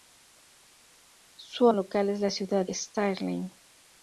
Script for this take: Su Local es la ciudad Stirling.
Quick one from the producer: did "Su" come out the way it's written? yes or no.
yes